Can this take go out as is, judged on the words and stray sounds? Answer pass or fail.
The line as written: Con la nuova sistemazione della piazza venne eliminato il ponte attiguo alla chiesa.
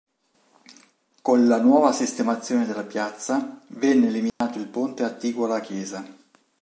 fail